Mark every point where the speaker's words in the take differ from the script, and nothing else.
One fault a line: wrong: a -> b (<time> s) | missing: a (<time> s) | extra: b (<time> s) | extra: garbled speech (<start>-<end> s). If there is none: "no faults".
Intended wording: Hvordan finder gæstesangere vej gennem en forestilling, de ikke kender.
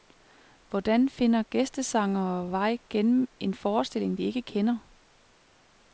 no faults